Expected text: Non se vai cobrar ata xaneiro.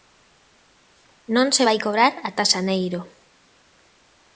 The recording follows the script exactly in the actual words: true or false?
true